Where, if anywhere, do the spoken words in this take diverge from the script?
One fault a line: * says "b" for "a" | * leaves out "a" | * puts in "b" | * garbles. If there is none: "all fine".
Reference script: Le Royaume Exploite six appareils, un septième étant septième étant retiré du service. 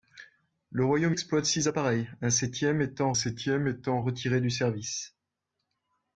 all fine